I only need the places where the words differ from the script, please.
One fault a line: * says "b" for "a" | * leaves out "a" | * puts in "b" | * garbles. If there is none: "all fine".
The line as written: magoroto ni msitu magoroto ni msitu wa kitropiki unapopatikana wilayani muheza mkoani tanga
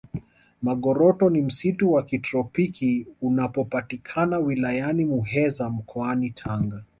* leaves out "magoroto ni msitu"